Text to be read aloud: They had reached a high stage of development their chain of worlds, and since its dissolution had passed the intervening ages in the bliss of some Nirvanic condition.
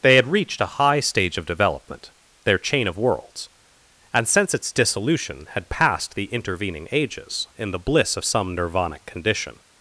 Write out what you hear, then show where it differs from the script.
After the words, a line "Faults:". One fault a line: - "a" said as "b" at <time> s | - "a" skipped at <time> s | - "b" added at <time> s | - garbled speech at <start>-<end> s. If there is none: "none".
They had reached a high stage of development their chain of worlds, and since its dissolution had passed the intervening ages in the bliss of some Nirvanic condition.
Faults:
none